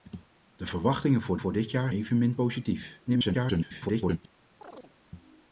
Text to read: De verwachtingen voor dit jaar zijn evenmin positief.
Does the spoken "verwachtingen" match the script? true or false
true